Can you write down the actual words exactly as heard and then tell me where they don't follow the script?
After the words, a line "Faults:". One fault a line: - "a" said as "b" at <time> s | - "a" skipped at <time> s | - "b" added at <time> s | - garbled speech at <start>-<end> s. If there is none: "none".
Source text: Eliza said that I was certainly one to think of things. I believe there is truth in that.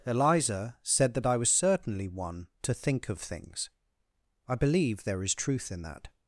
Eliza said that I was certainly one to think of things. I believe there is truth in that.
Faults:
none